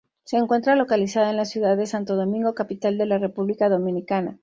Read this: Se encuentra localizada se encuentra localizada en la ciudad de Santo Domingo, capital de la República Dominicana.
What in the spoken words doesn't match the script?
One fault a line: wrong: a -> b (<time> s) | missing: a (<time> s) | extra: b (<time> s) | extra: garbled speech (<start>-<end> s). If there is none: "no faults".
missing: se encuentra localizada (1.3 s)